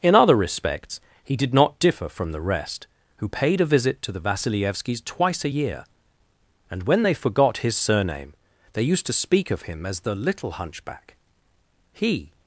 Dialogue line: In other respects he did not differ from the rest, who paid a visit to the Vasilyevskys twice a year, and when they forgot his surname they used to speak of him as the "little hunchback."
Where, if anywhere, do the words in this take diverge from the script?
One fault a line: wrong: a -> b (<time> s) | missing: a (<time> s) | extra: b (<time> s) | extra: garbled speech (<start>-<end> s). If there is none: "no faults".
extra: He (11.9 s)